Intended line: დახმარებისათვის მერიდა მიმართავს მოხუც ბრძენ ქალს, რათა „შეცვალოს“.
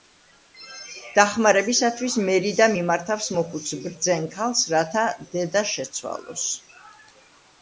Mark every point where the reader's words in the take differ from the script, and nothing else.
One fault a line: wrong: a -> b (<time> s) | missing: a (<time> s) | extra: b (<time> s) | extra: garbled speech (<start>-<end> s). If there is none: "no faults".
extra: დედა (5.3 s)